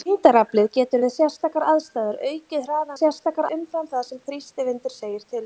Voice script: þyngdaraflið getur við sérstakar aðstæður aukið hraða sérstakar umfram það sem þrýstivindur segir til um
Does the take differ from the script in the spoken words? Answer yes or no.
no